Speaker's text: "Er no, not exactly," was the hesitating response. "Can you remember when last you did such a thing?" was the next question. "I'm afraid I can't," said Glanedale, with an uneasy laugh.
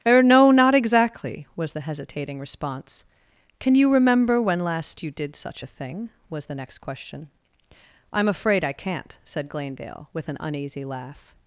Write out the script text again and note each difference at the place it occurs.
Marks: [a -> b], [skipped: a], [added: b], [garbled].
"Er no, not exactly," was the hesitating response. "Can you remember when last you did such a thing?" was the next question. "I'm afraid I can't," said Glanedale, with an uneasy laugh.